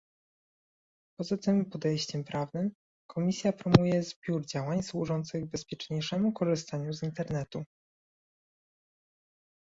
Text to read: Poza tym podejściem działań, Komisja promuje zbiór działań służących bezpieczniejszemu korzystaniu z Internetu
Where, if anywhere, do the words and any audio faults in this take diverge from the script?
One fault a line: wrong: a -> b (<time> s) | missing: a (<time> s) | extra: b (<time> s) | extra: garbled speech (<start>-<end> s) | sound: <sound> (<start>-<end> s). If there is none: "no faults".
wrong: działań -> prawnym (2.2 s)